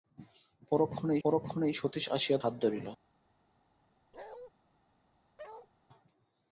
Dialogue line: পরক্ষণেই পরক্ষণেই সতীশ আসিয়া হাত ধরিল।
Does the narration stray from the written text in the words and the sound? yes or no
yes